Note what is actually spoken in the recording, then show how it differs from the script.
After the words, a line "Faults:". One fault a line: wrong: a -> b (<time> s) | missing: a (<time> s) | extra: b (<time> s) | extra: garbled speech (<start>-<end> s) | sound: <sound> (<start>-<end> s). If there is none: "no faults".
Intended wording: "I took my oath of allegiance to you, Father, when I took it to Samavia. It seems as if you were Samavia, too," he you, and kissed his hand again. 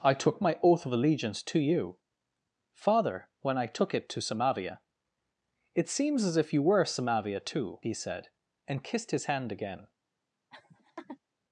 "I took my oath of allegiance to you, Father, when I took it to Samavia. It seems as if you were Samavia, too," he said, and kissed his hand again.
Faults:
wrong: you -> said (7.9 s)
sound: laugh (10.5-11.2 s)